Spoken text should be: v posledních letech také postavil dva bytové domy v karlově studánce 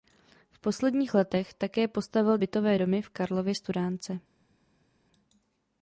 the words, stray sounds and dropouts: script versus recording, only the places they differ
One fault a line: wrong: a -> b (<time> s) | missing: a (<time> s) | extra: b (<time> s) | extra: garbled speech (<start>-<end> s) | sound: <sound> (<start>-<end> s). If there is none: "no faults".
missing: dva (2.4 s)